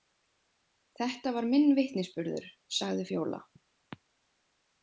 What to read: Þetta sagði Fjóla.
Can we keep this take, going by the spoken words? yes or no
no